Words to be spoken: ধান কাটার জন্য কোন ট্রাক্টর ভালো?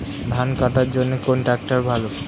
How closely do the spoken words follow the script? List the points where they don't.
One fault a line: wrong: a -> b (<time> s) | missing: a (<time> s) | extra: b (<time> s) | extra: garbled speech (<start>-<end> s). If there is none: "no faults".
no faults